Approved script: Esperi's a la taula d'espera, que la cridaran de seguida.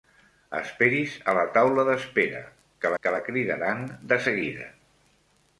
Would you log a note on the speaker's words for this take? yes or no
yes